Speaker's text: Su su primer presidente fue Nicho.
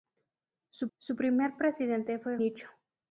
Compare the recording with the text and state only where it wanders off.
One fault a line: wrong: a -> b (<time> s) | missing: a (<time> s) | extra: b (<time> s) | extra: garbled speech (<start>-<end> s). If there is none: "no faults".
no faults